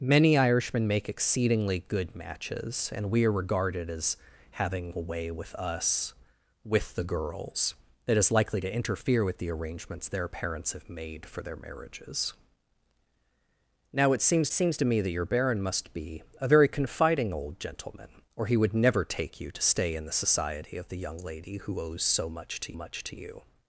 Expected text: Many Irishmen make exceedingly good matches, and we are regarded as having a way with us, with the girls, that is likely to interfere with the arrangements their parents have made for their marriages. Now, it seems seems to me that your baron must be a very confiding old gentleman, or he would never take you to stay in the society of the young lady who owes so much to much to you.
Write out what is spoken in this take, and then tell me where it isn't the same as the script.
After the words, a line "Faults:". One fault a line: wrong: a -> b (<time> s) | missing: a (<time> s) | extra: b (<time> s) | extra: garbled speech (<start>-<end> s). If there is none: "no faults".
Many Irishmen make exceedingly good matches, and we are regarded as having a way with us, with the girls, that is likely to interfere with the arrangements their parents have made for their marriages. Now, it seems seems to me that your baron must be a very confiding old gentleman, or he would never take you to stay in the society of the young lady who owes so much to much to you.
Faults:
no faults